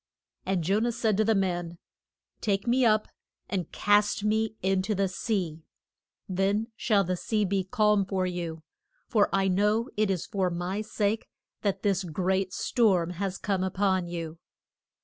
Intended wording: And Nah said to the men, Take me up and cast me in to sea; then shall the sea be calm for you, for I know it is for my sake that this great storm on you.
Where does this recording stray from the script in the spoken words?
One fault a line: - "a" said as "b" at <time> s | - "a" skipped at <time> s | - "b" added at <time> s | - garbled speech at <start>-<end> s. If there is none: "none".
- "Jo" added at 0.6 s
- "the" added at 5.0 s
- "has come up" added at 13.1 s